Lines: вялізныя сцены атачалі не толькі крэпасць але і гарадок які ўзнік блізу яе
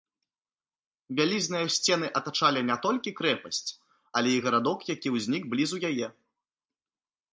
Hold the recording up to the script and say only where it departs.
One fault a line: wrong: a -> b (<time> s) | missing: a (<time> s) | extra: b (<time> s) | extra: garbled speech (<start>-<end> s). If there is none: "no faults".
no faults